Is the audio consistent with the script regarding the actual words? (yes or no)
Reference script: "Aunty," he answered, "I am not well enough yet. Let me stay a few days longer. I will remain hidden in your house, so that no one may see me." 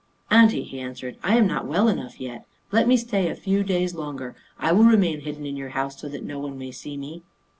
yes